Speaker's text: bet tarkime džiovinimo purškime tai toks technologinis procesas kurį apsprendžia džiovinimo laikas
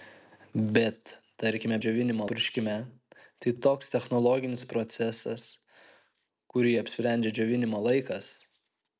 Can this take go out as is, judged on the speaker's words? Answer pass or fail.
pass